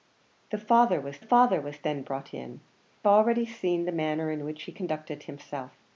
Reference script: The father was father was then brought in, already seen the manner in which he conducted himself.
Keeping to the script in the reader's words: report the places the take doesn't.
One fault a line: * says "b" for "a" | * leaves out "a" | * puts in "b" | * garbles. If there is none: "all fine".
all fine